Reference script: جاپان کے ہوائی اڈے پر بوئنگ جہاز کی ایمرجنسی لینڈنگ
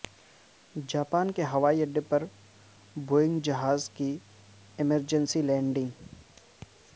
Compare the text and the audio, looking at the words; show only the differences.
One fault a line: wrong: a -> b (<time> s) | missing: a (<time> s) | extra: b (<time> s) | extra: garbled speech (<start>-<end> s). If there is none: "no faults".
no faults